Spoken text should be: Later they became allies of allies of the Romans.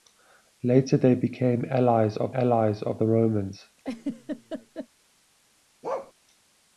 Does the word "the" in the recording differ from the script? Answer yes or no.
no